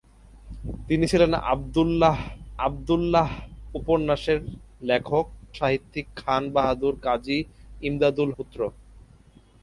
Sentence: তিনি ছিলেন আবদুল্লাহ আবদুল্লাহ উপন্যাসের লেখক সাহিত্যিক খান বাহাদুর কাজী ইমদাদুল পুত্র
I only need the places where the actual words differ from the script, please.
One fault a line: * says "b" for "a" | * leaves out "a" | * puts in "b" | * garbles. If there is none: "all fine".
all fine